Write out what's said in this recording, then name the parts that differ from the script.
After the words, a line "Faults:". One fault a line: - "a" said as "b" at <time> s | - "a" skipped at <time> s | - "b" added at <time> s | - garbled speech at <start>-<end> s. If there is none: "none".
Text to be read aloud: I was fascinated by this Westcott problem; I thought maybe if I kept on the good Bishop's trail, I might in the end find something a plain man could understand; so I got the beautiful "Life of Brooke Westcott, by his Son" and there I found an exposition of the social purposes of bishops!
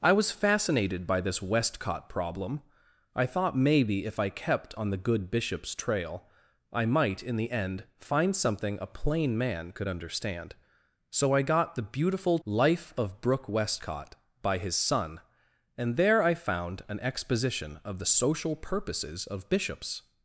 I was fascinated by this Westcott problem; I thought maybe if I kept on the good Bishop's trail, I might in the end find something a plain man could understand; so I got the beautiful "Life of Brooke Westcott, by his Son" and there I found an exposition of the social purposes of bishops!
Faults:
none